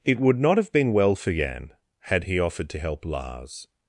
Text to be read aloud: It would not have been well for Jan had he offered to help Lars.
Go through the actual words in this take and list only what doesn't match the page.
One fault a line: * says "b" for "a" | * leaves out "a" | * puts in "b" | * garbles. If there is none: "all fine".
all fine